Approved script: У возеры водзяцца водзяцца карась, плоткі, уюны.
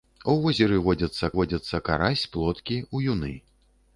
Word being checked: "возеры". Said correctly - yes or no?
yes